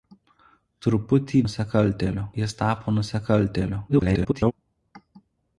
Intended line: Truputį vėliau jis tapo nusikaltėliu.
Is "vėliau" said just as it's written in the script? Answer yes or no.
no